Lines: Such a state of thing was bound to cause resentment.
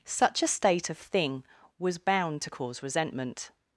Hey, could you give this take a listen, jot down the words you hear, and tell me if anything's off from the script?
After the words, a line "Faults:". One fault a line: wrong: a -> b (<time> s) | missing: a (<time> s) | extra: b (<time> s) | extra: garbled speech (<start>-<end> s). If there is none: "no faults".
Such a state of thing was bound to cause resentment.
Faults:
no faults